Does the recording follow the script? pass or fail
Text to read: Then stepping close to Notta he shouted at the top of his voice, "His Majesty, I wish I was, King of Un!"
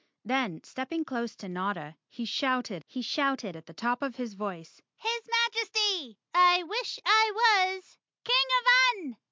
fail